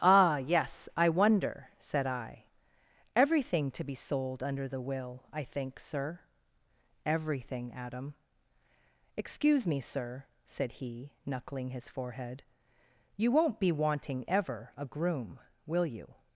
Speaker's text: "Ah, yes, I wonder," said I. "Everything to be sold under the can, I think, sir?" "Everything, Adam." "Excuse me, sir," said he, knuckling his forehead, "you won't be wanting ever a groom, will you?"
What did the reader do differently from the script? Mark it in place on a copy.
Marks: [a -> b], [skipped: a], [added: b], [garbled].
"Ah, yes, I wonder," said I. "Everything to be sold under the [can, -> will] I think, sir?" "Everything, Adam." "Excuse me, sir," said he, knuckling his forehead, "you won't be wanting ever a groom, will you?"